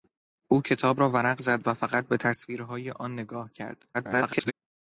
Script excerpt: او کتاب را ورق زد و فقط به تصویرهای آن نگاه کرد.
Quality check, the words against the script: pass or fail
fail